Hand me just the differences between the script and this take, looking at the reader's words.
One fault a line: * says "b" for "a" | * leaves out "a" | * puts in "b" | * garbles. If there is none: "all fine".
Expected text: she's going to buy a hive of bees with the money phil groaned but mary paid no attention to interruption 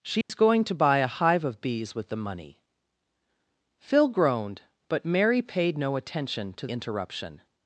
all fine